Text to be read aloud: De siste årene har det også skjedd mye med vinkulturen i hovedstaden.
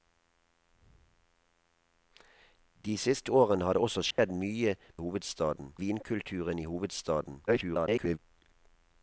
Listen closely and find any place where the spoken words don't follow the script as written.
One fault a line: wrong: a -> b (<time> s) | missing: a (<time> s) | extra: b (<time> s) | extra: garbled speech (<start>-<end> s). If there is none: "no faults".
wrong: med -> hovedstaden (5.0 s)
extra: garbled speech (7.5-8.2 s)